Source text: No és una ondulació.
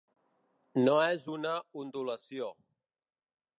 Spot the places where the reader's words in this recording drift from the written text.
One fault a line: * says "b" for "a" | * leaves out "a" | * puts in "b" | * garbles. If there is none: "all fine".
all fine